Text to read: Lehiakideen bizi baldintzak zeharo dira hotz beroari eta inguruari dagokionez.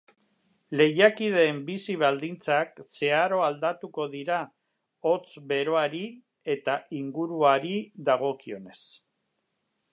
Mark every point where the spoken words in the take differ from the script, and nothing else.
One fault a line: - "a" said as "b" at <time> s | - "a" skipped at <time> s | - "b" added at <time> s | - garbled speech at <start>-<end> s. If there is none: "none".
- "aldatuko" added at 3.5 s